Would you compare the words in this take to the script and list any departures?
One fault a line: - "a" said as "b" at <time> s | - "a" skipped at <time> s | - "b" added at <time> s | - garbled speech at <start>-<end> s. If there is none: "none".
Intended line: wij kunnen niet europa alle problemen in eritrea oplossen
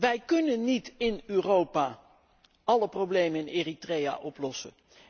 - "in" added at 1.0 s